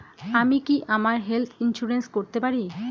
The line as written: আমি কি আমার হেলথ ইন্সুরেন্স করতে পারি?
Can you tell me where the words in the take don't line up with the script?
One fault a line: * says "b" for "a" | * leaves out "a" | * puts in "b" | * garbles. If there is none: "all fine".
all fine